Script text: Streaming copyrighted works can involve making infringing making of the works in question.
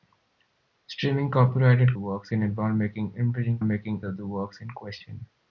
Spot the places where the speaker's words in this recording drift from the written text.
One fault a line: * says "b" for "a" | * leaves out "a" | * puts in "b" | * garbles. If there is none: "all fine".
all fine